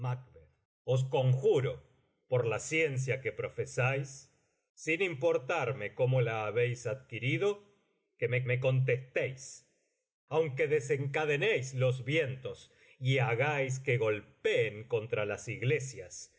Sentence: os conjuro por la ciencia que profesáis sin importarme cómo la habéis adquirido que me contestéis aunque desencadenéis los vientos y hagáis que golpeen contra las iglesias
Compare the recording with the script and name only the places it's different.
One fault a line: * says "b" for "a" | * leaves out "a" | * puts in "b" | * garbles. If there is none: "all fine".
* puts in "me"